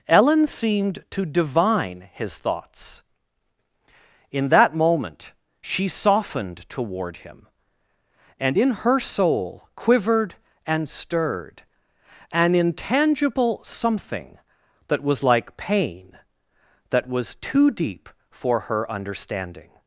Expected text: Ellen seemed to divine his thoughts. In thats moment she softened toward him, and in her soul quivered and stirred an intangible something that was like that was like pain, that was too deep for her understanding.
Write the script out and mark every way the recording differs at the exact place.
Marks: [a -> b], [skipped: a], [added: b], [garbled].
Ellen seemed to divine his thoughts. In [thats -> that] moment she softened toward him, and in her soul quivered and stirred an intangible something that was like [skipped: that was like] pain, that was too deep for her understanding.